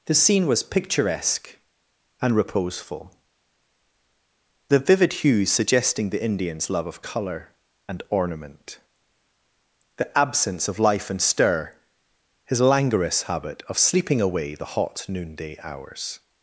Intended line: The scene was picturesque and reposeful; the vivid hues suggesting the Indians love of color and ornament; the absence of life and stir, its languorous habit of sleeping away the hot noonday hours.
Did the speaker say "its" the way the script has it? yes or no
no